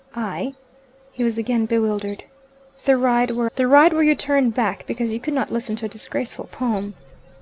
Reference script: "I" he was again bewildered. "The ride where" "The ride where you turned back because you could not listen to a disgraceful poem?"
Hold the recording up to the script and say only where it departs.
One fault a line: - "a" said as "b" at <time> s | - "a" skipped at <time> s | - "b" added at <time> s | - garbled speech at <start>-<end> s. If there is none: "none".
none